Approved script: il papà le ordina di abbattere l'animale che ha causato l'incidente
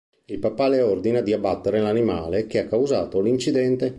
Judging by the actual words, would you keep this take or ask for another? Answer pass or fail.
pass